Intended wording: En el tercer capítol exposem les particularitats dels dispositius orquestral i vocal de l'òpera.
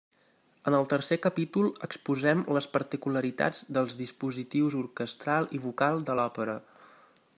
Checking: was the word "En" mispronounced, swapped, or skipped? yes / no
no